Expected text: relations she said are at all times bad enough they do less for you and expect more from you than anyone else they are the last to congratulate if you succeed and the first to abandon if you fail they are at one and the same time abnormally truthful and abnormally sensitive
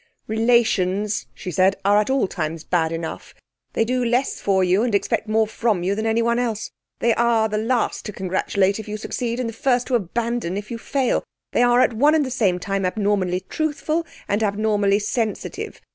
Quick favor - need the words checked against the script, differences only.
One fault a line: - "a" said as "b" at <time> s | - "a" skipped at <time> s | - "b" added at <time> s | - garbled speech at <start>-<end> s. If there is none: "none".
none